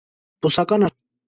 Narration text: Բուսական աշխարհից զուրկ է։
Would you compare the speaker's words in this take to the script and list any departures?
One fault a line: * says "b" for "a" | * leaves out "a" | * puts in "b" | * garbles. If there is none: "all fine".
* leaves out "աշխարհից զուրկ"